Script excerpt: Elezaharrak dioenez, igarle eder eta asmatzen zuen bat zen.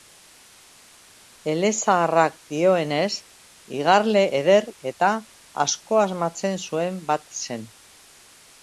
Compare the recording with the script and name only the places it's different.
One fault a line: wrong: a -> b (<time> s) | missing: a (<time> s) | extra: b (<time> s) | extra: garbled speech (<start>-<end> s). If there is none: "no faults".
extra: asko (5.7 s)